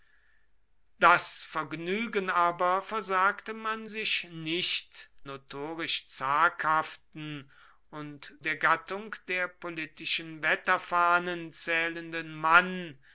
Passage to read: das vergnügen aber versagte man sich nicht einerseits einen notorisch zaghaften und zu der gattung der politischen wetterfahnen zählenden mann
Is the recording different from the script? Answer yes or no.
yes